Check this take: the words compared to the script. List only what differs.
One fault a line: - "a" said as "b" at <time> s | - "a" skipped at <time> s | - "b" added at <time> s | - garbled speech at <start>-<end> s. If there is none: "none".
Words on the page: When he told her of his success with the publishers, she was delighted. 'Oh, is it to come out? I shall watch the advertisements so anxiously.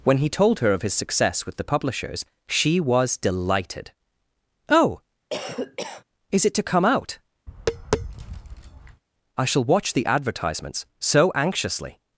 none